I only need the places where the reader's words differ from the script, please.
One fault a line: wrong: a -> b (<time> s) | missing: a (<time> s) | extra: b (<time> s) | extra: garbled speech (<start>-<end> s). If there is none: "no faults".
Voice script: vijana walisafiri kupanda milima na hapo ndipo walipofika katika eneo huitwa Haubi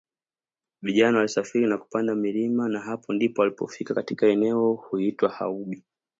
extra: na (1.7 s)